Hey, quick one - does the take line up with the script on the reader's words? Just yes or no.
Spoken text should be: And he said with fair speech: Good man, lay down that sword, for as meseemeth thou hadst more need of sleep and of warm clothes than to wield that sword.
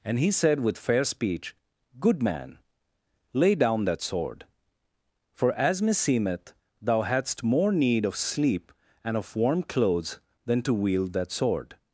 yes